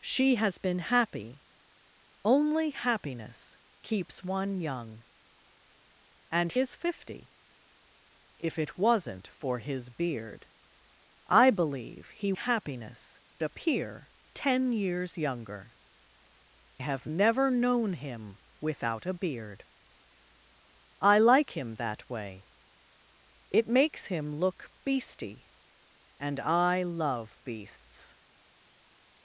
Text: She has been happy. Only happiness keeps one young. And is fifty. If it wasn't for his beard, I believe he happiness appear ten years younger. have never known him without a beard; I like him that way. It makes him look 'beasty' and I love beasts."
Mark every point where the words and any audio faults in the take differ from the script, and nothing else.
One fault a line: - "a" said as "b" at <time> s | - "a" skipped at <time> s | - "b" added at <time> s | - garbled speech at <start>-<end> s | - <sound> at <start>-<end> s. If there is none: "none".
none